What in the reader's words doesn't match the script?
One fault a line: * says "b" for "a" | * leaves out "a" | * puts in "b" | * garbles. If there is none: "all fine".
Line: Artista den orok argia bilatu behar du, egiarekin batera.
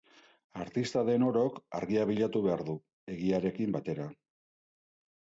all fine